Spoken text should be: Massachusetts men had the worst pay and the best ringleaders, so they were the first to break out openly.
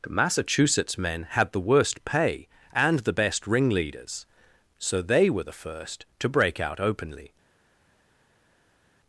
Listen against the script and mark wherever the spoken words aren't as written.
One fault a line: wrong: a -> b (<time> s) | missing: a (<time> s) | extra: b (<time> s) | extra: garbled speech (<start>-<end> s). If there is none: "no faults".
no faults